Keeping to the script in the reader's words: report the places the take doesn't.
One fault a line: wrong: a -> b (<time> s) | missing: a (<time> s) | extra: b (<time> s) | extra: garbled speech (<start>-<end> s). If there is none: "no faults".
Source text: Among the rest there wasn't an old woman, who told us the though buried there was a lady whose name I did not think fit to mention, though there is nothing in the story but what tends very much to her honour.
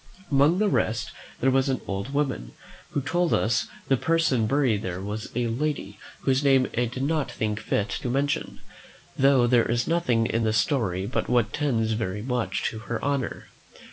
wrong: wasn't -> was (1.5 s)
wrong: though -> person (4.0 s)